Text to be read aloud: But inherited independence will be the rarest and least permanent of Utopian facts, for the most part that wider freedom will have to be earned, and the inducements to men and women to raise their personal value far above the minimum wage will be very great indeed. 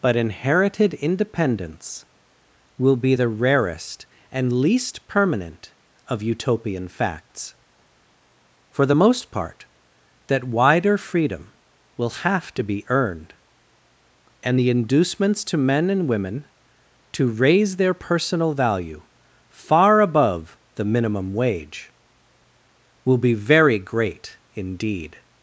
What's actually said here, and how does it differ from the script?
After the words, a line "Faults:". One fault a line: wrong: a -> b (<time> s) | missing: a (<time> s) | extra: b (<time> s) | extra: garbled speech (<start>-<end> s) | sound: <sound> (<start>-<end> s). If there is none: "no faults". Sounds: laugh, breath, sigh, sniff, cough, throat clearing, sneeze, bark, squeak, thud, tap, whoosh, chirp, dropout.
But inherited independence will be the rarest and least permanent of Utopian facts, for the most part that wider freedom will have to be earned, and the inducements to men and women to raise their personal value far above the minimum wage will be very great indeed.
Faults:
no faults